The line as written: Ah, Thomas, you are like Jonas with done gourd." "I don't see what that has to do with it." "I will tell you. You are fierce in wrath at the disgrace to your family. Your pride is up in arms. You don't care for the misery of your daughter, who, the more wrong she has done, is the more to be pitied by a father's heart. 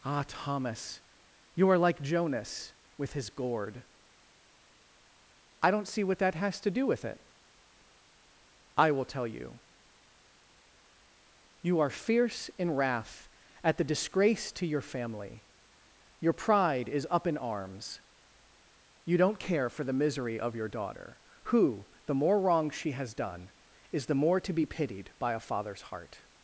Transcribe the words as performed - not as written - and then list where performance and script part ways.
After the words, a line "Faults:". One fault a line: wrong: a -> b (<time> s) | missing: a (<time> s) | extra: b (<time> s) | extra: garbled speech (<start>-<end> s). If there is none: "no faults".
Ah, Thomas, you are like Jonas with his gourd." "I don't see what that has to do with it." "I will tell you. You are fierce in wrath at the disgrace to your family. Your pride is up in arms. You don't care for the misery of your daughter, who, the more wrong she has done, is the more to be pitied by a father's heart.
Faults:
wrong: done -> his (3.1 s)